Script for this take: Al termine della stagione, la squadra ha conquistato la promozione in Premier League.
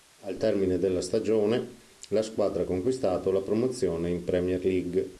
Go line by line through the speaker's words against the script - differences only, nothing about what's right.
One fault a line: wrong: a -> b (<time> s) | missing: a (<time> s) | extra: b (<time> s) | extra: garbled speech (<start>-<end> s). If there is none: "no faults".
no faults